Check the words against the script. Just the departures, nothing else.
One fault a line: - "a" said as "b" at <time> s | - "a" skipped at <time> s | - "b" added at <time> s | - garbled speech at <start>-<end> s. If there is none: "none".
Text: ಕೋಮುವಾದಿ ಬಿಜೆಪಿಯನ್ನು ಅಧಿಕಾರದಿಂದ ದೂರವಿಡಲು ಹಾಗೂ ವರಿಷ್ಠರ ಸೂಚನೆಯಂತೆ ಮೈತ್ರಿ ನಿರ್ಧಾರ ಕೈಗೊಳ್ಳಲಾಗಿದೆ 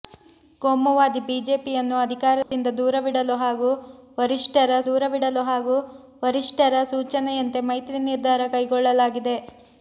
- "ದೂರವಿಡಲು ಹಾಗೂ ವರಿಷ್ಠರ" added at 4.9 s